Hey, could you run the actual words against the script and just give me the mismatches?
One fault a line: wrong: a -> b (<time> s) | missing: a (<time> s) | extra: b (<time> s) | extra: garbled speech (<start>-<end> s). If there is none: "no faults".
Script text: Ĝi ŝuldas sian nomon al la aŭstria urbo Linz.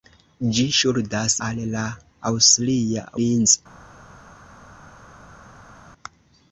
missing: sian nomon (1.4 s)
missing: urbo (3.1 s)